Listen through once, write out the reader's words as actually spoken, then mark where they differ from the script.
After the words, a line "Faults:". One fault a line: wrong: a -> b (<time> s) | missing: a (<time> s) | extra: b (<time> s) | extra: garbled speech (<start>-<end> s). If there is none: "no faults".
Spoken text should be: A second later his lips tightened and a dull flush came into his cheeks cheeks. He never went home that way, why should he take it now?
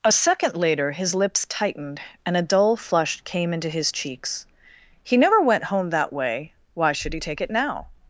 A second later his lips tightened and a dull flush came into his cheeks. He never went home that way, why should he take it now?
Faults:
missing: cheeks (4.5 s)